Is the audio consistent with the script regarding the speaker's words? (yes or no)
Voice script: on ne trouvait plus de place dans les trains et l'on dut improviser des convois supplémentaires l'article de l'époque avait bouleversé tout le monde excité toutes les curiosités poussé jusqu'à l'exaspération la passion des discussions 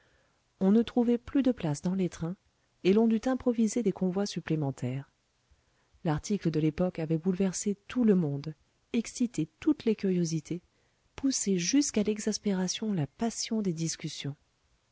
yes